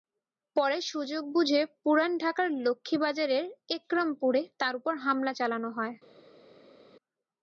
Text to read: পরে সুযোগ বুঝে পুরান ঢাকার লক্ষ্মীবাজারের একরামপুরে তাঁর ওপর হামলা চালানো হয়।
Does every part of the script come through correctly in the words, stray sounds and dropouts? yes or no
yes